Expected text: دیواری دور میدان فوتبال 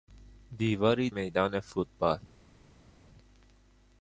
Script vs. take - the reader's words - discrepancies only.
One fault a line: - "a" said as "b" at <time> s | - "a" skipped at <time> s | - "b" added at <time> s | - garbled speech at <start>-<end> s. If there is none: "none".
- "دور" skipped at 1.1 s